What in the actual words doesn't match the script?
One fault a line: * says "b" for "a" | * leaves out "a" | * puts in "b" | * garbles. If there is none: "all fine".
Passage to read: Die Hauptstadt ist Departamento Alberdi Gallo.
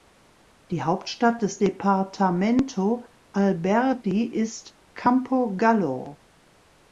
* says "des" for "ist"
* puts in "ist Campo"